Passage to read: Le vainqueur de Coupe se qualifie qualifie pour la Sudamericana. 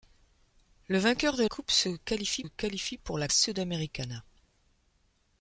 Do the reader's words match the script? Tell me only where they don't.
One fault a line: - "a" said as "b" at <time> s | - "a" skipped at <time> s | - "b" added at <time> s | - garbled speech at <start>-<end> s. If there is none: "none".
none